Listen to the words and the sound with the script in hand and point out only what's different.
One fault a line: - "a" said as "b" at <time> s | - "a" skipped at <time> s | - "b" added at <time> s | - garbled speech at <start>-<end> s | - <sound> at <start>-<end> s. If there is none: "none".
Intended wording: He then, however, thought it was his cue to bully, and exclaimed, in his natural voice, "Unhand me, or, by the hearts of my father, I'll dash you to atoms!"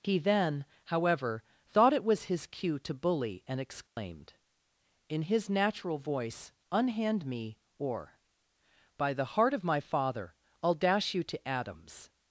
- dropout at 3.9-4.0 s
- "hearts" said as "heart" at 9.4 s